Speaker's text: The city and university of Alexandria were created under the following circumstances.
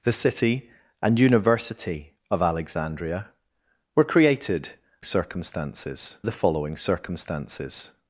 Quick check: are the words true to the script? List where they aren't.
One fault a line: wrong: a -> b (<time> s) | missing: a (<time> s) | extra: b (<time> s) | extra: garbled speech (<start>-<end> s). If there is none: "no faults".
wrong: under -> circumstances (5.0 s)